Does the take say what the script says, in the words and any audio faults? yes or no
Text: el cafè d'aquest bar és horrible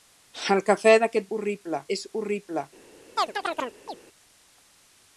no